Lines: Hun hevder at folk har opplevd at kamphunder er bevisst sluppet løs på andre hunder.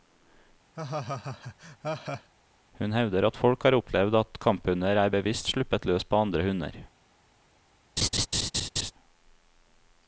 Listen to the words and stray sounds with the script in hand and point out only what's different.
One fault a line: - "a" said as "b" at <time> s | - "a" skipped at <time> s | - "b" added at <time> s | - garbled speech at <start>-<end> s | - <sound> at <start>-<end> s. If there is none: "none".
- laugh at 0.8-2.3 s
- laugh at 8.0-8.9 s